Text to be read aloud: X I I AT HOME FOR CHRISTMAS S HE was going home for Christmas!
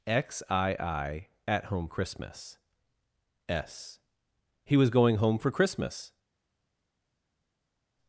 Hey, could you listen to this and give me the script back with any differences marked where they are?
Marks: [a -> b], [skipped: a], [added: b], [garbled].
X I I AT HOME [skipped: FOR] CHRISTMAS S HE was going home for Christmas!